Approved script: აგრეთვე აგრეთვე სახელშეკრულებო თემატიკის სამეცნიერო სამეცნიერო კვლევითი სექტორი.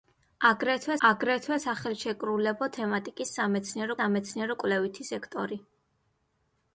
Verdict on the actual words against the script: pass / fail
pass